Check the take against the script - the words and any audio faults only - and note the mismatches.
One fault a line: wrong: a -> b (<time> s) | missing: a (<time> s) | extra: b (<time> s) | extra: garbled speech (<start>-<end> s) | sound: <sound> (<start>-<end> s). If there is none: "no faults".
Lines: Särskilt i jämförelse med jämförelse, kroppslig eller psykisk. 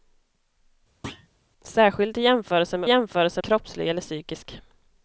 sound: thud (1.0-1.3 s)